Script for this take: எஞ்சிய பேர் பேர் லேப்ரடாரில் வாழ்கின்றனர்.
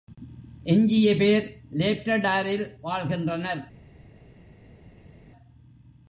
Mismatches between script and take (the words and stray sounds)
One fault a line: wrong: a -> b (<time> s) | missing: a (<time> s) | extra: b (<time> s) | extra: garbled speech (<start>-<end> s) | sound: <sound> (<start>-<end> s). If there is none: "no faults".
missing: பேர் (1.5 s)